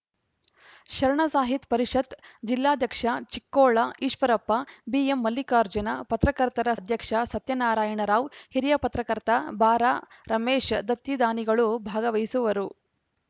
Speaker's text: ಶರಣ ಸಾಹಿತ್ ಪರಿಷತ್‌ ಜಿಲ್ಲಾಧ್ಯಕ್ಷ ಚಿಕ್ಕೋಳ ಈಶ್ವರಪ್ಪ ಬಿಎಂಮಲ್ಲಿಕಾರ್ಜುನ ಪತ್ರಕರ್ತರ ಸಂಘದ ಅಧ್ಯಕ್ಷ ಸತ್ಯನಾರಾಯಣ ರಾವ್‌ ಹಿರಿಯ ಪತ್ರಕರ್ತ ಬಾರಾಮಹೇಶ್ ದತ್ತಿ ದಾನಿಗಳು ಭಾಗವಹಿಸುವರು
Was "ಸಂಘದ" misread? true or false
true